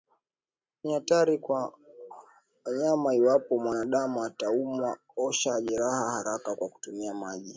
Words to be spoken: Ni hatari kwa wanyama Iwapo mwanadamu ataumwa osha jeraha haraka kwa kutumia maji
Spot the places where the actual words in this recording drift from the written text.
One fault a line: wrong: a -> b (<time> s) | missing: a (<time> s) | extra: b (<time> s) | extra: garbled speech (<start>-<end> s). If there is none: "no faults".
no faults